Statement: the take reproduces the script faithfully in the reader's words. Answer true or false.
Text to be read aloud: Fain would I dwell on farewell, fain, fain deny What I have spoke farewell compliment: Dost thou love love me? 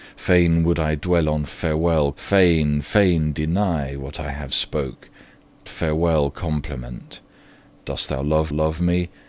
true